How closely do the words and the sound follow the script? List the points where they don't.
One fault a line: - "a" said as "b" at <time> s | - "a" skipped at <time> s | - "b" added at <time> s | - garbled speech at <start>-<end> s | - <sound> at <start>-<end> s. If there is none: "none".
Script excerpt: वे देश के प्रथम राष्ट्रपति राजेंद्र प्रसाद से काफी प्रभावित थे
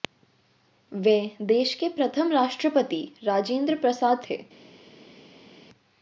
- "से काफी प्रभावित" skipped at 4.2 s